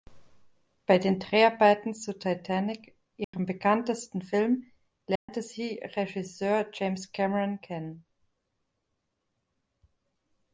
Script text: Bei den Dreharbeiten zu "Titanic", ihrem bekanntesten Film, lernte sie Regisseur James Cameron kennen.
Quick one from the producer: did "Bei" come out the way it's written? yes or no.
yes